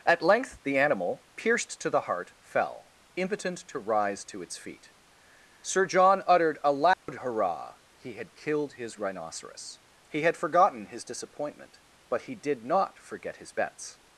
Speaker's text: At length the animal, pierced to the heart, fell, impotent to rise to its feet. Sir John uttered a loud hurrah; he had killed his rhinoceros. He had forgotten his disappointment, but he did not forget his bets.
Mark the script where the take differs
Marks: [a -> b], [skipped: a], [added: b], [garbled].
At length the animal, pierced to the heart, fell, impotent to rise to its feet. Sir John uttered a loud hurrah; he had killed his rhinoceros. He had forgotten his disappointment, but he did not forget his bets.